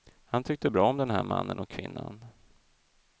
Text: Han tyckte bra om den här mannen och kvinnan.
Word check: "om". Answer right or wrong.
right